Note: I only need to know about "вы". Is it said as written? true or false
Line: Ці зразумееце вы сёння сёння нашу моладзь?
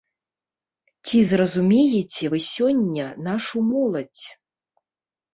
true